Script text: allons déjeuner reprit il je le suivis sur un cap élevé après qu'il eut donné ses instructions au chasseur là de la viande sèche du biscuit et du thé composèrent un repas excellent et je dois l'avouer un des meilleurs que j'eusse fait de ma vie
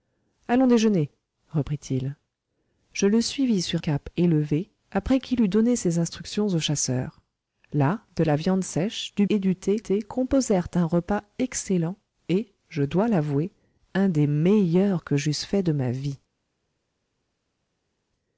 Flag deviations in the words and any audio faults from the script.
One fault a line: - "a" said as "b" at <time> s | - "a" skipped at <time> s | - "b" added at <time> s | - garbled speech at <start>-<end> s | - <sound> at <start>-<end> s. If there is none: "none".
- "un" skipped at 3.8 s
- "biscuit" skipped at 9.3 s
- "thé" added at 9.8 s